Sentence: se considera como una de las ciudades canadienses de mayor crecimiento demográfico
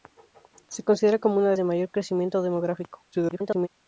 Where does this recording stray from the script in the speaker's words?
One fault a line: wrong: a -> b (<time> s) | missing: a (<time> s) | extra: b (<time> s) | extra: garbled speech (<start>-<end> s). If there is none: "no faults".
missing: las ciudades canadienses (1.6 s)
extra: garbled speech (3.1-3.7 s)